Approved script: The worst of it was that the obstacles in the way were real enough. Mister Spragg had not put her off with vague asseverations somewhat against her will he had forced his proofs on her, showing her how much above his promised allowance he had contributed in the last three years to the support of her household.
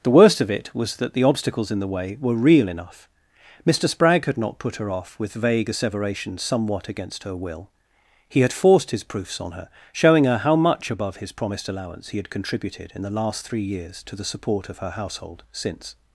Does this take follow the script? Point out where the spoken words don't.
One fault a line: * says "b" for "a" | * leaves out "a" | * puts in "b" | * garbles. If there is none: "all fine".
* puts in "Since"